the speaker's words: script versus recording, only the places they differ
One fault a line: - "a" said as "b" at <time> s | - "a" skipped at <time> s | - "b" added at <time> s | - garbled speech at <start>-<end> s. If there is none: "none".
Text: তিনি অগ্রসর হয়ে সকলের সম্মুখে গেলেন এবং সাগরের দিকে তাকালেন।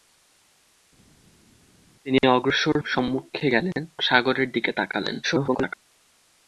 - "হয়ে সকলের" skipped at 2.8 s
- "এবং" skipped at 3.8 s
- garbled speech at 5.2-5.8 s